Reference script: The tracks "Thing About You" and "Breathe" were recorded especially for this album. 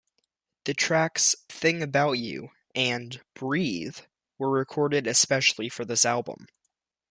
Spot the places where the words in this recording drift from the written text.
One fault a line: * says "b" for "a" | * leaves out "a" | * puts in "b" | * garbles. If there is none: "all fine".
all fine